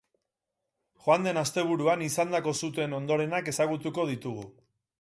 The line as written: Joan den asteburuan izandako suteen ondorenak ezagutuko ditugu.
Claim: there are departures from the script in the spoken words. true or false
false